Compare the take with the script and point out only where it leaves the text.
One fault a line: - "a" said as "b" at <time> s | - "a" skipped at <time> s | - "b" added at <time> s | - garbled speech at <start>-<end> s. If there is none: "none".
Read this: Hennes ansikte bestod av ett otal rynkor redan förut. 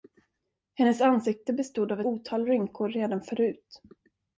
- "ett" skipped at 2.0 s